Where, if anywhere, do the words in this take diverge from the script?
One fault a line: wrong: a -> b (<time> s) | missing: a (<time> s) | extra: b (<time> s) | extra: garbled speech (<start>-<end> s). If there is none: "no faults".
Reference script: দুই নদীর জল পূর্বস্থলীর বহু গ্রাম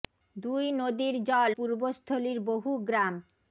no faults